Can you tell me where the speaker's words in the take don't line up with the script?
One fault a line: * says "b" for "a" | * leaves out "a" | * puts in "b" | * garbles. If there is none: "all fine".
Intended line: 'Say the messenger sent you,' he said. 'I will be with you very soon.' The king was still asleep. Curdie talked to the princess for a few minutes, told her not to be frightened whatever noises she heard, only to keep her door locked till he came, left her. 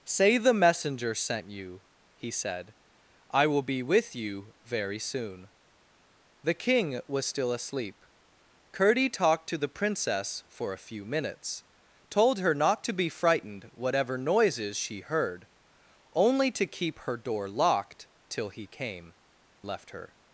all fine